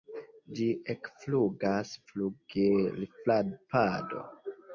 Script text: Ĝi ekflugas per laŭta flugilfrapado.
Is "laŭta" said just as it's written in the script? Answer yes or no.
no